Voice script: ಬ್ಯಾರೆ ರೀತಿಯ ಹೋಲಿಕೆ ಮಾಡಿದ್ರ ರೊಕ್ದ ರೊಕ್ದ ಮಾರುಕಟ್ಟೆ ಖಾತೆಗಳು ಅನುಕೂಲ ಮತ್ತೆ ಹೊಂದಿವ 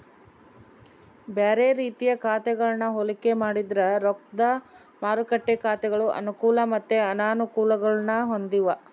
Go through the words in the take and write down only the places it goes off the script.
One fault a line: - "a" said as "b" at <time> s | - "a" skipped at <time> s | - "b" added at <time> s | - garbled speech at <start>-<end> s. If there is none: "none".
- "ಖಾತೆಗಳನ್ನ" added at 2.2 s
- "ರೊಕ್ದ" skipped at 4.4 s
- "ಅನಾನುಕೂಲಗುಳ್ನ" added at 7.1 s